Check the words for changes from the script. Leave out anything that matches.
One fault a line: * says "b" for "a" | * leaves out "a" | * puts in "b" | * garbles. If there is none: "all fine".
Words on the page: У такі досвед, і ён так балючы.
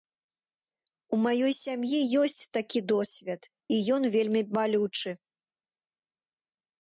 * puts in "маёй сям'і ёсць"
* says "вельмі" for "так"